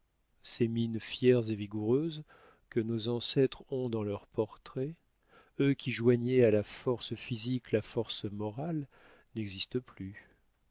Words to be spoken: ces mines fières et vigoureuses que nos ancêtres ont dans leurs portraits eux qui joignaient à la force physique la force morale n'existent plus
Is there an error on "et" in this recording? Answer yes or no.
no